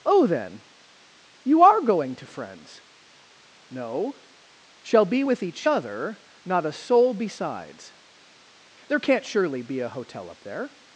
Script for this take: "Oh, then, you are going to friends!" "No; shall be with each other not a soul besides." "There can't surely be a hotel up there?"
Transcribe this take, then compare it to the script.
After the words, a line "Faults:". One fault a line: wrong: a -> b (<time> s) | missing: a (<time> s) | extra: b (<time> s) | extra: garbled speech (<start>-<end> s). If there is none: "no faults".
"Oh, then, you are going to friends!" "No; shall be with each other not a soul besides." "There can't surely be a hotel up there?"
Faults:
no faults